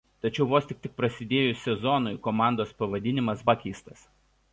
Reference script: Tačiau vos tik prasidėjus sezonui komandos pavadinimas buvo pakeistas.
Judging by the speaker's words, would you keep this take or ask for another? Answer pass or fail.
fail